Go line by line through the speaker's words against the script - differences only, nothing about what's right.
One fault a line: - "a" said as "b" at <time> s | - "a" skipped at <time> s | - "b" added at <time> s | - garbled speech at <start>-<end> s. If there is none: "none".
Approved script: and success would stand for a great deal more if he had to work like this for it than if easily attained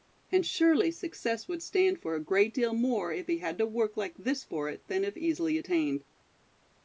- "surely" added at 0.4 s